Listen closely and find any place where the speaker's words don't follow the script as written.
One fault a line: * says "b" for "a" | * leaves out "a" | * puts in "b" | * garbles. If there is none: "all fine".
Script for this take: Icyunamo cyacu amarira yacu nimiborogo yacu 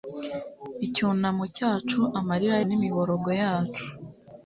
* leaves out "yacu"